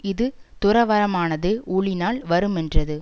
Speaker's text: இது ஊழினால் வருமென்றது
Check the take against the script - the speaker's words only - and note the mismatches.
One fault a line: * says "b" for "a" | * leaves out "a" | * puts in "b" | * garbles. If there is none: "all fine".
* puts in "துறவறமானது"